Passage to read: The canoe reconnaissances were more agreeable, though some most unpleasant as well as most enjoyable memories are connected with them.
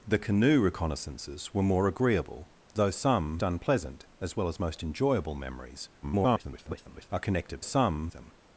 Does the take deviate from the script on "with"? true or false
true